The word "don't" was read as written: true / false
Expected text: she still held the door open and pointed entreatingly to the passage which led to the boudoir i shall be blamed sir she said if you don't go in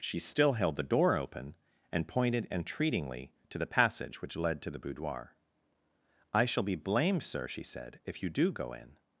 false